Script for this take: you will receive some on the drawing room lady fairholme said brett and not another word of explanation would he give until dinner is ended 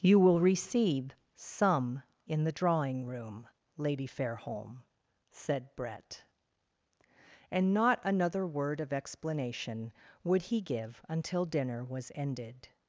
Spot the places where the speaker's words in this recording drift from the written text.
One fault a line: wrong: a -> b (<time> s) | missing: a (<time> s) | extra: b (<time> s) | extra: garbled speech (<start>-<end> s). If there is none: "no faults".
wrong: on -> in (2.3 s)
wrong: is -> was (11.8 s)